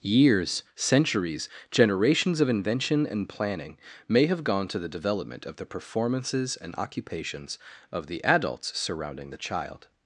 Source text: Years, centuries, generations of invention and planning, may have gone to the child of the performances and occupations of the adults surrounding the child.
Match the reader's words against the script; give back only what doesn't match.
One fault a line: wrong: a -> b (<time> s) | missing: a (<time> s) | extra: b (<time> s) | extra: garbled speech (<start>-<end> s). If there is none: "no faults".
wrong: child -> development (4.9 s)